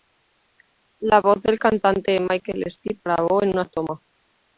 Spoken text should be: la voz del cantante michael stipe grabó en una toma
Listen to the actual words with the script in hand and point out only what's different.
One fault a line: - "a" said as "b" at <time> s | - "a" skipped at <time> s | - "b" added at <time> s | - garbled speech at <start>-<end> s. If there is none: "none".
none